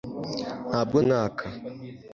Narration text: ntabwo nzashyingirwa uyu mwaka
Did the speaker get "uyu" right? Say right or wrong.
wrong